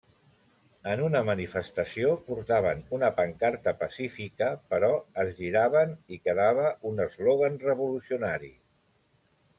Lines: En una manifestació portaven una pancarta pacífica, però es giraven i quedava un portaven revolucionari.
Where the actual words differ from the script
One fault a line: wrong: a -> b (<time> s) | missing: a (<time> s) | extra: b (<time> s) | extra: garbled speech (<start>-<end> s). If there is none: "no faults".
wrong: portaven -> eslògan (7.1 s)